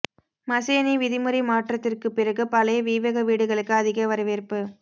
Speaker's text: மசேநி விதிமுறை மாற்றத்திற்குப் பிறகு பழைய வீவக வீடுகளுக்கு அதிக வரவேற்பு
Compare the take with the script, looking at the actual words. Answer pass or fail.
pass